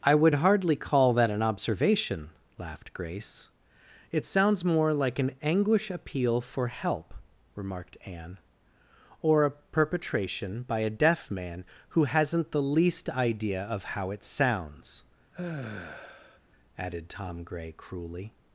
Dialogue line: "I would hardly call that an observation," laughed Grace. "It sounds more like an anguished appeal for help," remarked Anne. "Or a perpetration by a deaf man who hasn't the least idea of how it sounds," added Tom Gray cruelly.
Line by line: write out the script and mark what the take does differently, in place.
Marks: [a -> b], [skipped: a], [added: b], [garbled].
"I would hardly call that an observation," laughed Grace. "It sounds more like an [anguished -> anguish] appeal for help," remarked Anne. "Or a perpetration by a deaf man who hasn't the least idea of how it sounds," added Tom Gray cruelly.